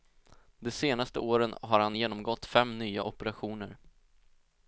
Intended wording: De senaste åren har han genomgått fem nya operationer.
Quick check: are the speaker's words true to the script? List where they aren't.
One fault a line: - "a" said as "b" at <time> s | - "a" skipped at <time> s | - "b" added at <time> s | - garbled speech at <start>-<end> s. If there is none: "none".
none